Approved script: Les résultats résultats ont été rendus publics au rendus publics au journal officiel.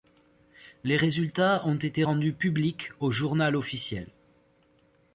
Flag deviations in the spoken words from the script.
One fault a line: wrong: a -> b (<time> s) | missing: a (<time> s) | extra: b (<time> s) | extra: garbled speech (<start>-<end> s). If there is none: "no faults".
missing: résultats (1.7 s)
missing: rendus publics au (3.1 s)